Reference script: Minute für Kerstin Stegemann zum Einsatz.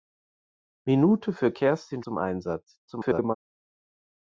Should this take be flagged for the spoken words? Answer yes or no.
yes